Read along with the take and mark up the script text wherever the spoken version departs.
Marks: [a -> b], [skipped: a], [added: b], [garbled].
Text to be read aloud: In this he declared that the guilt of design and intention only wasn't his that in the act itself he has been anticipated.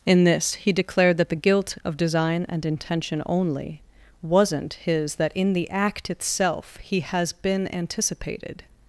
In this he declared that the guilt of design and intention only wasn't his that in the act itself he has been anticipated.